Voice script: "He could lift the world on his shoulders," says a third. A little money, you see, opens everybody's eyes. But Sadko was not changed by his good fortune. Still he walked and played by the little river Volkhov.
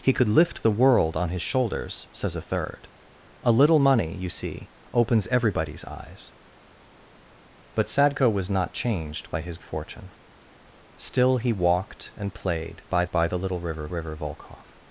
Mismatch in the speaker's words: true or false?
true